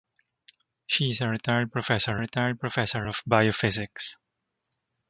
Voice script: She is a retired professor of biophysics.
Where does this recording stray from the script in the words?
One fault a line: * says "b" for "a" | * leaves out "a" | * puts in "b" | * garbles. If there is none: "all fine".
* puts in "retired professor"